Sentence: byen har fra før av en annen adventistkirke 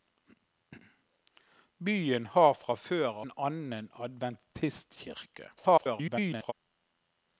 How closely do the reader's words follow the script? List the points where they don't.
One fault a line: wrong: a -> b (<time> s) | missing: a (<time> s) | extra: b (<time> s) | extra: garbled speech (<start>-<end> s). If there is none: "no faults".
missing: av (3.2 s)
extra: garbled speech (5.6-6.5 s)